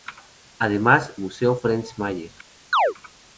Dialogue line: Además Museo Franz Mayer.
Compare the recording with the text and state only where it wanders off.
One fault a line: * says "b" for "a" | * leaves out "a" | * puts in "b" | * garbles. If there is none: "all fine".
all fine